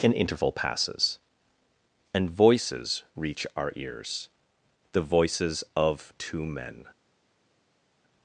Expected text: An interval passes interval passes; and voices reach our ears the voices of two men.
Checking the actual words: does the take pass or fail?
fail